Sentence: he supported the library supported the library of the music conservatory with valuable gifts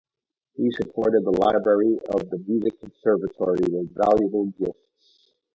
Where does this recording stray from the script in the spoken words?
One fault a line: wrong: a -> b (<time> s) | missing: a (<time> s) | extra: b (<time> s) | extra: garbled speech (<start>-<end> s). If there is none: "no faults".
missing: supported the library (2.0 s)